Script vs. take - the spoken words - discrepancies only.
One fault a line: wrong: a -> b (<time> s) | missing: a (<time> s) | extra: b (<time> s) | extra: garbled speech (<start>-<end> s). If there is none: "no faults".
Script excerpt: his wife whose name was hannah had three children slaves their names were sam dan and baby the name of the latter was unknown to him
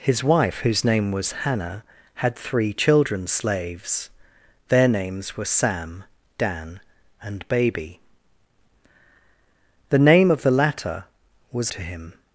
missing: unknown (11.7 s)